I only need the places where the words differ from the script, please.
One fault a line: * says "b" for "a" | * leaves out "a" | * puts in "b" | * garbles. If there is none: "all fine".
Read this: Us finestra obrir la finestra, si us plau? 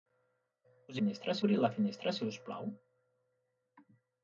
all fine